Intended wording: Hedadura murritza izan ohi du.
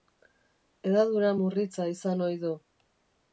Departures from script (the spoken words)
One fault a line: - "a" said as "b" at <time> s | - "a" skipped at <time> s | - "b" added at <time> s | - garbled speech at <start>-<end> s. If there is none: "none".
none